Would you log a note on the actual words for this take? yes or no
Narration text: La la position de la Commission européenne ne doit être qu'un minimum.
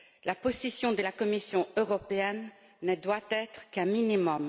yes